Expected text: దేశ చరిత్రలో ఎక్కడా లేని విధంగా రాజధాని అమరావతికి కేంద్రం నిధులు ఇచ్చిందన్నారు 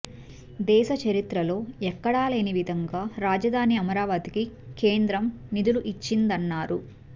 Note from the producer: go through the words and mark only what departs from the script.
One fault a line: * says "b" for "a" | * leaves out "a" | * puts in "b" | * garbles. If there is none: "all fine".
all fine